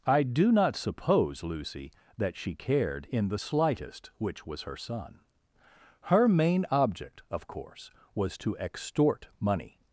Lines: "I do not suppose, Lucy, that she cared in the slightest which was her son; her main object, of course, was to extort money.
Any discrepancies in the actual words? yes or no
no